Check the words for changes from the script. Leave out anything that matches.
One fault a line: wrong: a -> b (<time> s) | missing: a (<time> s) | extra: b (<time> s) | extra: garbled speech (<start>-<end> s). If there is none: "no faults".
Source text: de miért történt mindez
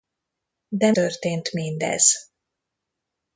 missing: miért (0.9 s)